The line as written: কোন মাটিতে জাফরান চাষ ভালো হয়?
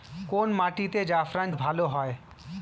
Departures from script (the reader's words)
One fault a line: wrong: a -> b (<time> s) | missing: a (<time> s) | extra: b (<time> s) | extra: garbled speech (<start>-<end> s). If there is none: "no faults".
missing: চাষ (1.5 s)